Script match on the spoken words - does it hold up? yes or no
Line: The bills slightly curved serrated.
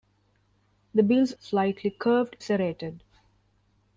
yes